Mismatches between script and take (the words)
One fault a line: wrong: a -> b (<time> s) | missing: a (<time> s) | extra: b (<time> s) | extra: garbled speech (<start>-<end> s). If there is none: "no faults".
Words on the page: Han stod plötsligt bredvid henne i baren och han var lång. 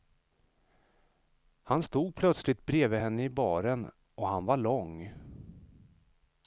no faults